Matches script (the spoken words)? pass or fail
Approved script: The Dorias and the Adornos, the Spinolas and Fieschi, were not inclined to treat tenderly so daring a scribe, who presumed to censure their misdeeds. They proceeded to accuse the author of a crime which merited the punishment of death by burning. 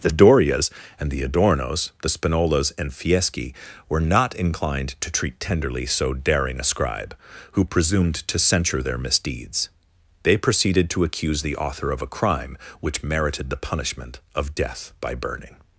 pass